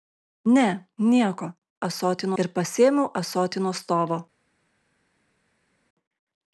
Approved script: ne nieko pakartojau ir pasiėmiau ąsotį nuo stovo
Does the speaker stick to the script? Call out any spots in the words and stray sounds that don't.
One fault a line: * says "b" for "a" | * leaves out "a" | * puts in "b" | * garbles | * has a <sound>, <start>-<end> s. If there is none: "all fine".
* says "ąsotį" for "pakartojau"